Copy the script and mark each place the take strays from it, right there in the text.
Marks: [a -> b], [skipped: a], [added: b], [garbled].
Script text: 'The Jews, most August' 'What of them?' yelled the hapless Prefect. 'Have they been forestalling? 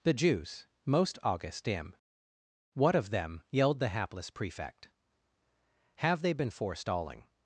'The Jews, most August' [added: dim] 'What of them?' yelled the hapless Prefect. 'Have they been forestalling?